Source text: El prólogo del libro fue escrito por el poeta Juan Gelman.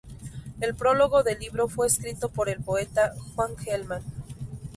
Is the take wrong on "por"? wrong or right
right